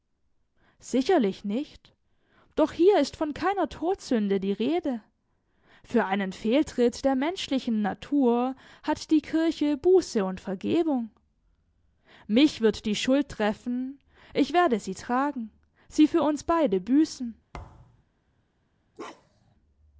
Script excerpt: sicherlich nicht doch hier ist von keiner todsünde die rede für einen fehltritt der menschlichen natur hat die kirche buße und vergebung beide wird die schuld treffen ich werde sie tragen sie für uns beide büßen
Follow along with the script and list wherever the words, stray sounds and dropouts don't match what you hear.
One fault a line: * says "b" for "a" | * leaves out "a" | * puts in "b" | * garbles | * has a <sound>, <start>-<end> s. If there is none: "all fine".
* says "mich" for "beide"
* has a thud, 17.5-18.0 s
* has a bark, 19.0-19.6 s